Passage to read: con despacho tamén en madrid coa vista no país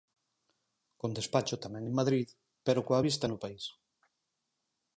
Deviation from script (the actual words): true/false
true